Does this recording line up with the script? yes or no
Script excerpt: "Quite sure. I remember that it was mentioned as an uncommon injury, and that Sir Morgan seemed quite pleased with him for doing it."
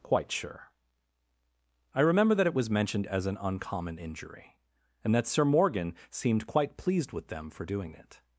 no